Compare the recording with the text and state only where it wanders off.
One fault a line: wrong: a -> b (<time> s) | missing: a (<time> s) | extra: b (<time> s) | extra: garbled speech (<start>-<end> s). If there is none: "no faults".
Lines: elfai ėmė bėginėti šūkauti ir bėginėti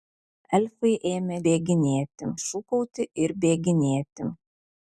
no faults